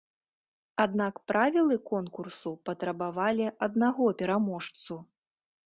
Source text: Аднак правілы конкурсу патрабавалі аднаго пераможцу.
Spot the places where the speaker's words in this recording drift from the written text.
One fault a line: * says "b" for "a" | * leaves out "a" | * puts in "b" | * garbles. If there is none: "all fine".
all fine